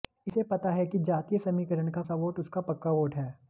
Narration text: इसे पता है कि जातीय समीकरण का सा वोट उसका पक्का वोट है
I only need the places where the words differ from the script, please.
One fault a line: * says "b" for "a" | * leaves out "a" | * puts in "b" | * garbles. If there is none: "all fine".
all fine